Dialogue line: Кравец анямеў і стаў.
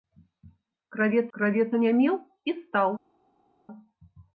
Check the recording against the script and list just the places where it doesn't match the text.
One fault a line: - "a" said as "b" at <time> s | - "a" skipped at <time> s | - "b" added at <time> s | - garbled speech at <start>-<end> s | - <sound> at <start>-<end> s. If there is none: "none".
- "кравец" added at 1.4 s